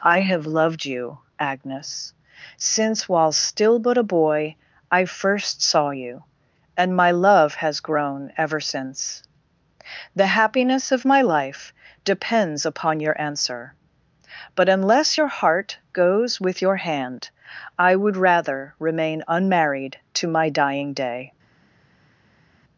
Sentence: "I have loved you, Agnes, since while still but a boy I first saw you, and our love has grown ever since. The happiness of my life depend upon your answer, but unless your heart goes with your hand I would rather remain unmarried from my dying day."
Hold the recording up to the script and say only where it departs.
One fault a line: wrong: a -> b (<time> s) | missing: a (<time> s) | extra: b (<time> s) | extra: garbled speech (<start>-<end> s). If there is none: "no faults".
wrong: our -> my (7.0 s)
wrong: depend -> depends (12.0 s)
wrong: from -> to (20.1 s)